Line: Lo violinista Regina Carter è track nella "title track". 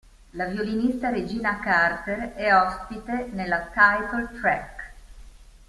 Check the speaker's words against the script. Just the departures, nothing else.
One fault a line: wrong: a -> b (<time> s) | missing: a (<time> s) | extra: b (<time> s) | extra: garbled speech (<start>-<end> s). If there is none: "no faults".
wrong: Lo -> La (0.3 s)
wrong: track -> ospite (2.5 s)